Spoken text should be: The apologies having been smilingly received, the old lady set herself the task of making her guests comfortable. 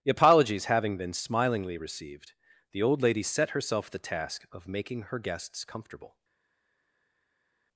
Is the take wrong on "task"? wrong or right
right